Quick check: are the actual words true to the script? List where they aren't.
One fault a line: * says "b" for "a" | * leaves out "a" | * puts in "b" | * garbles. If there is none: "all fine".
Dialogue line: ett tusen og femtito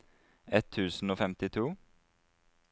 all fine